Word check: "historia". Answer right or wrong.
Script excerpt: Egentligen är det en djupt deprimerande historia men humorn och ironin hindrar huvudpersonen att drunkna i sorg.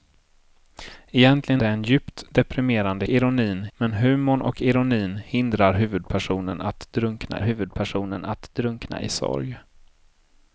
wrong